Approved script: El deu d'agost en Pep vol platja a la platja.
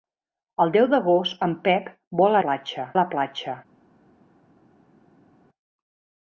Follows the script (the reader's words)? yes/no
yes